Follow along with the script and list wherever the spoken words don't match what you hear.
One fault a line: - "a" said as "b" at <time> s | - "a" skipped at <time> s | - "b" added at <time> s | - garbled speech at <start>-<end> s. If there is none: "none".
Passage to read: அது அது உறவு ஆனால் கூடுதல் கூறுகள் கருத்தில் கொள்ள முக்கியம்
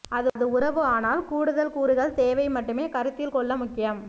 - "அது" skipped at 0.5 s
- "தேவை மட்டுமே" added at 2.1 s